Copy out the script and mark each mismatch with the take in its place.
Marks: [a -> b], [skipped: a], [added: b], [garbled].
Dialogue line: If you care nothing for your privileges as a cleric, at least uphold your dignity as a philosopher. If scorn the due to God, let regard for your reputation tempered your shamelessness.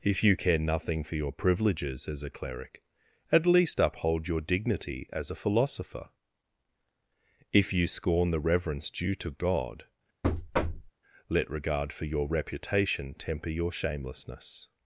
If you care nothing for your privileges as a cleric, at least uphold your dignity as a philosopher. If [added: you] scorn the [added: reverence] due to God, let regard for your reputation [tempered -> temper] your shamelessness.